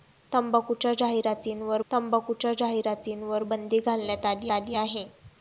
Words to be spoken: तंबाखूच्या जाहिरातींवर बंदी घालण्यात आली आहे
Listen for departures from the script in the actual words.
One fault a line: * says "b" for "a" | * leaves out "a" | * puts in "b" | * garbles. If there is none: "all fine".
* puts in "तंबाखूच्या जाहिरातींवर"
* puts in "आली"